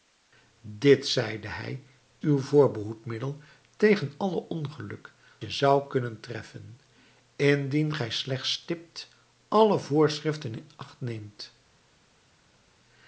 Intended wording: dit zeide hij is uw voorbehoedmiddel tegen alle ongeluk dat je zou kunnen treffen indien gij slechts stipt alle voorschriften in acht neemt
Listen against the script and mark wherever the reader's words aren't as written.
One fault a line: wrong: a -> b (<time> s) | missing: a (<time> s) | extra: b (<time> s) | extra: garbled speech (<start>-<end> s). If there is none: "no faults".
missing: is (1.8 s)
missing: dat (5.1 s)